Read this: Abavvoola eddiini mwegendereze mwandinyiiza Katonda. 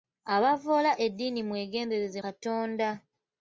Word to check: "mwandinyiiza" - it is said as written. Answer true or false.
false